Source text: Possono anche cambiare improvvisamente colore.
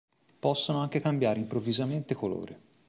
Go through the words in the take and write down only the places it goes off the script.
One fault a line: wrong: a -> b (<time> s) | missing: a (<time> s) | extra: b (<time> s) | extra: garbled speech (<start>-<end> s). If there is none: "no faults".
no faults